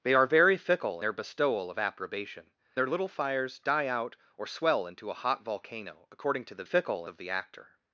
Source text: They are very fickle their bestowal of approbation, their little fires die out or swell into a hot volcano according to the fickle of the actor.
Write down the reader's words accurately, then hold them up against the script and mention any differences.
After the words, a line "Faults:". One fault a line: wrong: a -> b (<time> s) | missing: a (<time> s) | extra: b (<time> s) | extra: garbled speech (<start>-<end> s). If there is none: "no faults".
They are very fickle their bestowal of approbation, their little fires die out or swell into a hot volcano according to the fickle of the actor.
Faults:
no faults